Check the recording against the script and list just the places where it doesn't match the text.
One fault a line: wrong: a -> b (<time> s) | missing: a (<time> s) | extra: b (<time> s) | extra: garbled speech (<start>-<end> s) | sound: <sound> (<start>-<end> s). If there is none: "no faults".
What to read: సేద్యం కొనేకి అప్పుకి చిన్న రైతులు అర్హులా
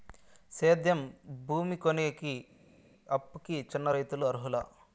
extra: భూమి (1.4 s)